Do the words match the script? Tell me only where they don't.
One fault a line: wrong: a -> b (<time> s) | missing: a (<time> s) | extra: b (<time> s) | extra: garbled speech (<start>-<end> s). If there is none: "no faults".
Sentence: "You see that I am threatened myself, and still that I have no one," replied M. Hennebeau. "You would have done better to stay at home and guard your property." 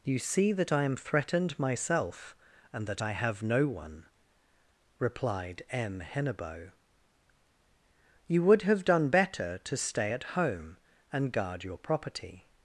missing: still (2.9 s)